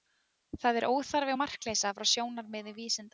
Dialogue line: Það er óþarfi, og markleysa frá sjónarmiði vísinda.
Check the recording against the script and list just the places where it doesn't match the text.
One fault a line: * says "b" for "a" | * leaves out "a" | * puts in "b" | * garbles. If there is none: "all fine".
all fine